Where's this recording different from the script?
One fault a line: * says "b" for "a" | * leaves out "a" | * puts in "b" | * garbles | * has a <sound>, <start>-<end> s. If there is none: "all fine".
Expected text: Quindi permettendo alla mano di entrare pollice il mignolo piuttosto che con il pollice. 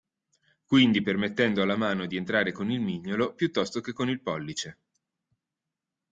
* says "con" for "pollice"